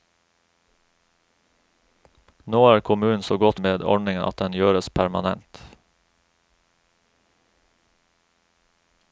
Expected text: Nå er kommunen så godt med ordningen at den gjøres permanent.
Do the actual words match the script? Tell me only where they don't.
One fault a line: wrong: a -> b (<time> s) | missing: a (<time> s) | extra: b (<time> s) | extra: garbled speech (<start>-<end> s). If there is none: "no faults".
no faults